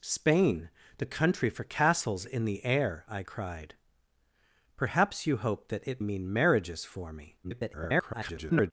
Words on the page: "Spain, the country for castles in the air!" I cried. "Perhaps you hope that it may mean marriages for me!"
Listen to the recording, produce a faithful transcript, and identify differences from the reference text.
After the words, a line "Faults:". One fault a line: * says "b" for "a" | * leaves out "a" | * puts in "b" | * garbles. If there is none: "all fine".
"Spain, the country for castles in the air!" I cried. "Perhaps you hope that it mean marriages for me!" [garbled]
Faults:
* leaves out "may"
* garbles